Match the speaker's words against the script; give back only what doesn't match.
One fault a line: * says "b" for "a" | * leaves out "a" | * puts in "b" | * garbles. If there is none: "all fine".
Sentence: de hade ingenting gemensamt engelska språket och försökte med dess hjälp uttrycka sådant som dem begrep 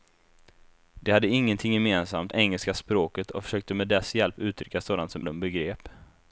all fine